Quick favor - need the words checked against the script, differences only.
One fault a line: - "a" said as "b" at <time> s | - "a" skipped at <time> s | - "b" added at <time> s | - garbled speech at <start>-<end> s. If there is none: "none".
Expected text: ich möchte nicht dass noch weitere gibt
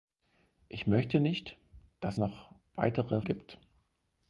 none